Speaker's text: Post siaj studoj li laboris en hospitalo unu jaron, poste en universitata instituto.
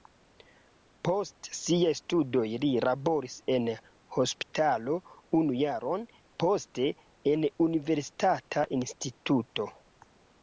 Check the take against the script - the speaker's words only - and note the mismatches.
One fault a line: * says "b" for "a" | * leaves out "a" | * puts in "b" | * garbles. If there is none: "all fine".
all fine